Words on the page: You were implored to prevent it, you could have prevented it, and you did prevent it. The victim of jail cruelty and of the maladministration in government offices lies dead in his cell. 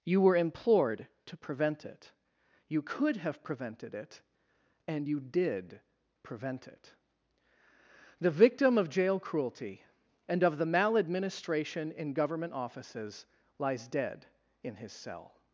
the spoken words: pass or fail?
pass